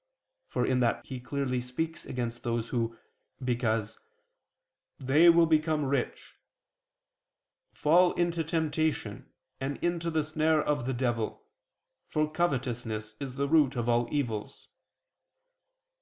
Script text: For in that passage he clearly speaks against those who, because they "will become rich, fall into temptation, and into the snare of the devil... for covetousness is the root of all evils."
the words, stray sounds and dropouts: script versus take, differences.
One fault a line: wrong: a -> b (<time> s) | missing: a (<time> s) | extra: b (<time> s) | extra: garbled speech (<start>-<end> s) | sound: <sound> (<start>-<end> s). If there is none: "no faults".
missing: passage (1.0 s)